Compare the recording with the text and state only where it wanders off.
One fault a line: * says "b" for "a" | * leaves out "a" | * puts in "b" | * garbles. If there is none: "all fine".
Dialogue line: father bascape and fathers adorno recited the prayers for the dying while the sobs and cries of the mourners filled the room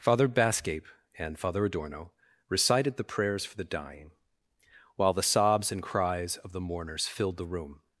* says "father" for "fathers"